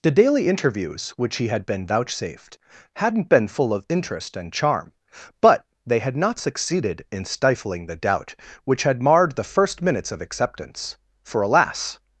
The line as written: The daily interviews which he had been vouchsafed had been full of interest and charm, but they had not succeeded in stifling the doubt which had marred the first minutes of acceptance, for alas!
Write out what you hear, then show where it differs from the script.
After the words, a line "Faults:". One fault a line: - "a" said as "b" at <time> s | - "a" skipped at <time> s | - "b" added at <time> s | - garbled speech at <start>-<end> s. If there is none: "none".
The daily interviews which he had been vouchsafed hadn't been full of interest and charm, but they had not succeeded in stifling the doubt which had marred the first minutes of acceptance, for alas!
Faults:
- "had" said as "hadn't" at 3.0 s